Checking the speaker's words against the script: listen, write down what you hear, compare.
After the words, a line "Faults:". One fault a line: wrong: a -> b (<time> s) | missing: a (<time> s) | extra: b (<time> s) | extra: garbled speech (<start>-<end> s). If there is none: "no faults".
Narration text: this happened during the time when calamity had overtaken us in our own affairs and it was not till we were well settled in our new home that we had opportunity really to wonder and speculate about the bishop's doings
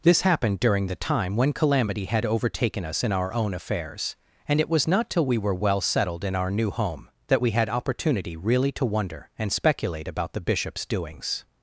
this happened during the time when calamity had overtaken us in our own affairs and it was not till we were well settled in our new home that we had opportunity really to wonder and speculate about the bishop's doings
Faults:
no faults